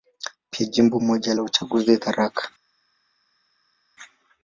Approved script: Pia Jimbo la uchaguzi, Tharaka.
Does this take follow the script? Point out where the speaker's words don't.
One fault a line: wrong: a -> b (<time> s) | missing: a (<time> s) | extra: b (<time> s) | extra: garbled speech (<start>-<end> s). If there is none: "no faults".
extra: moja (1.0 s)